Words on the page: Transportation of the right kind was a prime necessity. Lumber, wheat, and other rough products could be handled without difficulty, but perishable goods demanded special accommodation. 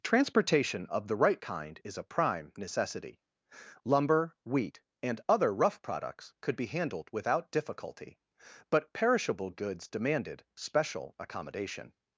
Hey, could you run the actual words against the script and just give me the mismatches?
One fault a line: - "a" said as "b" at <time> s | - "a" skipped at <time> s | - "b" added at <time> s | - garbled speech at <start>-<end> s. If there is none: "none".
- "was" said as "is" at 1.8 s